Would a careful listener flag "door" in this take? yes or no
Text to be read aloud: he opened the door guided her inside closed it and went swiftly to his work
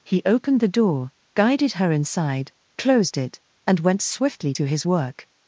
no